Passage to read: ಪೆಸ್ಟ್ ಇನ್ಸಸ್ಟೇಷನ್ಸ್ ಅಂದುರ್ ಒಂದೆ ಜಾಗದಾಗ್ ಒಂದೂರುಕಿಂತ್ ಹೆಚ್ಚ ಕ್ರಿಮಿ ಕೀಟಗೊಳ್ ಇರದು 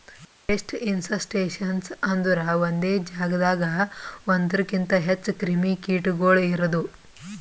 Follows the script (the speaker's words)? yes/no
yes